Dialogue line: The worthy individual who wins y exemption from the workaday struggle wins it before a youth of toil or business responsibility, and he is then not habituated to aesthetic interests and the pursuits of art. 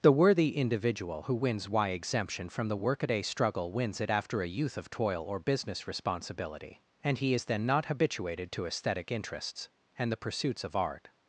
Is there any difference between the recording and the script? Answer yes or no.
yes